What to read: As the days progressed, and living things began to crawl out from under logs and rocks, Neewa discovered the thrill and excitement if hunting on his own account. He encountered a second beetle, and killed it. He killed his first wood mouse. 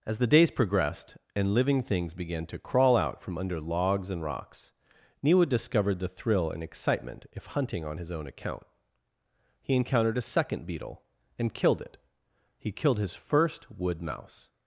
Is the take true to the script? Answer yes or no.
yes